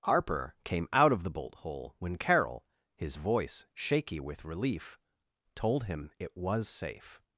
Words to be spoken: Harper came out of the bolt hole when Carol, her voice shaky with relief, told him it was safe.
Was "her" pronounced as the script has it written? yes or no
no